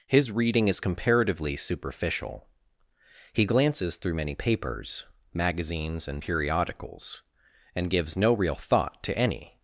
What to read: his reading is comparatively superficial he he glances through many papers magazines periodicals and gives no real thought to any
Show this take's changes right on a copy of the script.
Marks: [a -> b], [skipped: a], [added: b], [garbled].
his reading is comparatively superficial he [skipped: he] glances through many papers magazines [added: and] periodicals and gives no real thought to any